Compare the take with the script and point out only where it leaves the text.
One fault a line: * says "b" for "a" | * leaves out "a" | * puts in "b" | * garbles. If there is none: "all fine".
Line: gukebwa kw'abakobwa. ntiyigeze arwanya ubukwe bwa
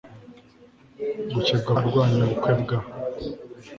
* leaves out "kw'abakobwa ntiyigeze"